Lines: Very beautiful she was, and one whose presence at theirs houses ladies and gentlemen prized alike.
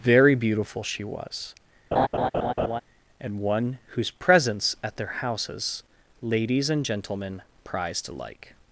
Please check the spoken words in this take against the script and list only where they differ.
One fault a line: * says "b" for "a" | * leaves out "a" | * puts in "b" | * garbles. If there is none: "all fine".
* says "their" for "theirs"